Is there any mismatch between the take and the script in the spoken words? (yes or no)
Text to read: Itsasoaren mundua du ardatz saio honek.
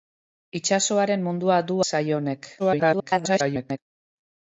yes